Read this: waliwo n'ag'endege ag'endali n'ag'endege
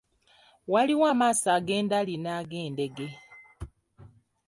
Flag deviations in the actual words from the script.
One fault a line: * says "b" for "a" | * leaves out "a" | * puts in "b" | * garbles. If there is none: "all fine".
* says "amaaso" for "n'ag'endege"